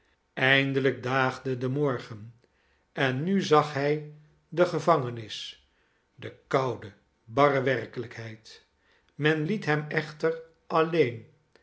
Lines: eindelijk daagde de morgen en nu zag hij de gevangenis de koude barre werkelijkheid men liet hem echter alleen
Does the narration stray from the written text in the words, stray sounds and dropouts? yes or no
no